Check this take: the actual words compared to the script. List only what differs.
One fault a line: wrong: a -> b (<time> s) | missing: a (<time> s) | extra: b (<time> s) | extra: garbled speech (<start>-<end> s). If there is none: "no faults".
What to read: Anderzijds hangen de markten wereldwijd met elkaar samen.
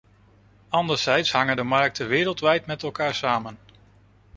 no faults